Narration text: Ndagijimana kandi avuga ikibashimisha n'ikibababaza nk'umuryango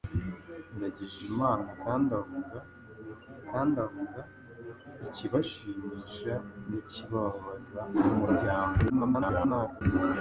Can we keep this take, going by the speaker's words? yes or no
no